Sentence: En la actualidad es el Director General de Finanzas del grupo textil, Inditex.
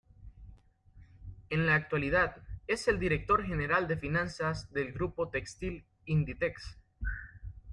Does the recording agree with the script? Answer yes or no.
yes